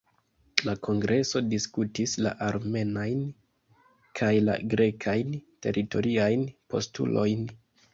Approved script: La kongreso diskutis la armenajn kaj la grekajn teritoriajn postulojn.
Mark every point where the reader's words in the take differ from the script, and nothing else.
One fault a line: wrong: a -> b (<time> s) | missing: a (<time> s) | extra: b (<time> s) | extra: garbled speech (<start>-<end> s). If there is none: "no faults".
no faults